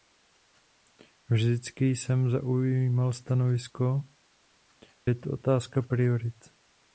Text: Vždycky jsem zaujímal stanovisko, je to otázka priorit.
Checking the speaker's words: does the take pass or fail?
pass